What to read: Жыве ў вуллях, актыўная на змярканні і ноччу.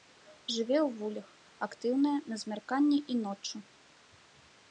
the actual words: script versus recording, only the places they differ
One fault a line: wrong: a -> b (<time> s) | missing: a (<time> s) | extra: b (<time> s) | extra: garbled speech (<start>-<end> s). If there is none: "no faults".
no faults